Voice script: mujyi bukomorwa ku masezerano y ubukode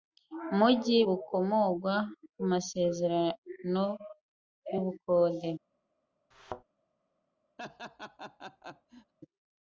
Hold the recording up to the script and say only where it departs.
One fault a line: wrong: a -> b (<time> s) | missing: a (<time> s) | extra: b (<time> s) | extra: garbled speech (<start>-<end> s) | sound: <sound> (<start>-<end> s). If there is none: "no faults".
sound: thud (6.3-6.6 s)
sound: laugh (7.6-9.1 s)